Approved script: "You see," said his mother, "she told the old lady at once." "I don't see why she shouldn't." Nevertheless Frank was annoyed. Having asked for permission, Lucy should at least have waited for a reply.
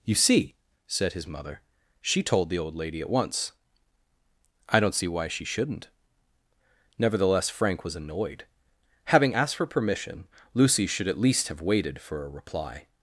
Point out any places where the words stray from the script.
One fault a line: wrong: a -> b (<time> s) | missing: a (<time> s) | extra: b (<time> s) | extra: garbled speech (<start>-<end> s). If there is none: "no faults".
no faults